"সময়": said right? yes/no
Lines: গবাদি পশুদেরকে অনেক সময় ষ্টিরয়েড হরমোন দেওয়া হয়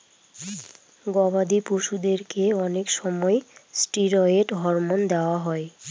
yes